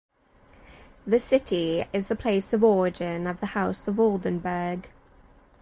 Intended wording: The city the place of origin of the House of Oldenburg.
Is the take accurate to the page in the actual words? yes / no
no